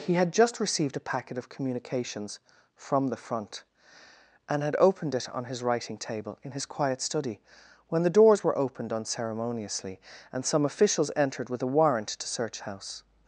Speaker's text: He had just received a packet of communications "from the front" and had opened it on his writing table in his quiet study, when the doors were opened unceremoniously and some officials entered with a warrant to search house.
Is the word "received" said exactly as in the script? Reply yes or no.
yes